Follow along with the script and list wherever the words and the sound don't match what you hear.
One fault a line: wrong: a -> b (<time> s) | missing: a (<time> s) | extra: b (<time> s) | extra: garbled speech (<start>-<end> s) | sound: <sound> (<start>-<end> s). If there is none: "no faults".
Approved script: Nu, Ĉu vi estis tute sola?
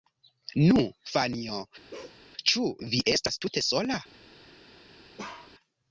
extra: Fanjo (1.1 s)
sound: bark (1.9-2.2 s)
wrong: estis -> estas (3.1 s)
sound: bark (5.2-5.5 s)